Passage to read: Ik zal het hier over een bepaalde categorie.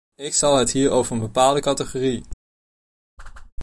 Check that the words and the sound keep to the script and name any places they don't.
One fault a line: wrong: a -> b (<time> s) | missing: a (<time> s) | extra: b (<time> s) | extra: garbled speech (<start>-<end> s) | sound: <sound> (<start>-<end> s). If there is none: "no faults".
sound: whoosh (3.2-3.5 s)